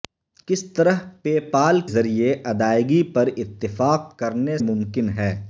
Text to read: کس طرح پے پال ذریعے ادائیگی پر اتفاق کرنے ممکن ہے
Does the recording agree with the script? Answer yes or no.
yes